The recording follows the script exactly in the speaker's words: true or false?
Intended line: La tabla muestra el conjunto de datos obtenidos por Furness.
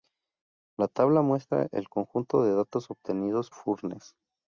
false